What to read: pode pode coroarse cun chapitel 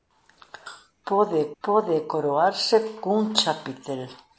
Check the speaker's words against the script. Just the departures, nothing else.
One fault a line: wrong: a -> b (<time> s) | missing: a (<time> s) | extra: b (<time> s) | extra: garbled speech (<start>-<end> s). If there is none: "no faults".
no faults